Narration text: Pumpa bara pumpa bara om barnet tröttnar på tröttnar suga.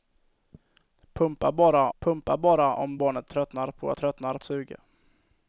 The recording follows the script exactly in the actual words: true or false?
true